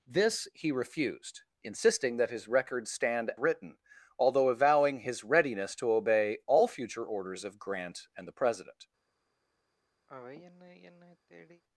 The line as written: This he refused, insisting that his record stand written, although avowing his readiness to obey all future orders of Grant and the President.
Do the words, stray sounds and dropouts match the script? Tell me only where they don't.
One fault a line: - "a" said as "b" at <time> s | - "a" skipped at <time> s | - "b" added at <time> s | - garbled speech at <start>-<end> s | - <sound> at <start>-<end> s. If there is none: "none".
- sigh at 10.1-11.6 s